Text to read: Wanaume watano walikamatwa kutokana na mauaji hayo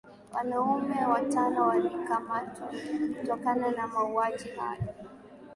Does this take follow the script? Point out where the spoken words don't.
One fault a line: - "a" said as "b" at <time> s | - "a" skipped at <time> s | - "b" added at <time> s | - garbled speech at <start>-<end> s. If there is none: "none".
none